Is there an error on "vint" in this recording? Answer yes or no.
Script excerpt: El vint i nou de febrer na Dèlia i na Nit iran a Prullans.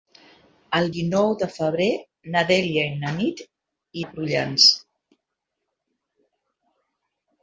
yes